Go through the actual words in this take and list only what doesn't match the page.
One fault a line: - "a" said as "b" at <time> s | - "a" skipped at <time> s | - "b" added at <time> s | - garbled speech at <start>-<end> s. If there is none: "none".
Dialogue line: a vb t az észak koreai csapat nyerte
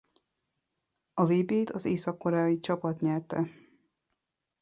none